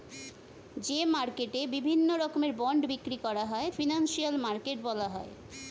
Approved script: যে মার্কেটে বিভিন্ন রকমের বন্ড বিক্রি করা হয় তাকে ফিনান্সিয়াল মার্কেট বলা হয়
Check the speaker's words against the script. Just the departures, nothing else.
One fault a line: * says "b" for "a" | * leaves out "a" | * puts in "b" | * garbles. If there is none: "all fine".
* leaves out "তাকে"